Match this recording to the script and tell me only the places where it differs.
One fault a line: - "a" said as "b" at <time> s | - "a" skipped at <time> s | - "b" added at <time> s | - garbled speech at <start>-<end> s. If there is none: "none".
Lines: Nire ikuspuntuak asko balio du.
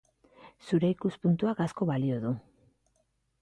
- "Nire" said as "Zure" at 0.7 s